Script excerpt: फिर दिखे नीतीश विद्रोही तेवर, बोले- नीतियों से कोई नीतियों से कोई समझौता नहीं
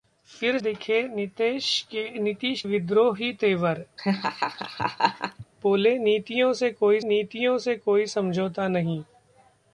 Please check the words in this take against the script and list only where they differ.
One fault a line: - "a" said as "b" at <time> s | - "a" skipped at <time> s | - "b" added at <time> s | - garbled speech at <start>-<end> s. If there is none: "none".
none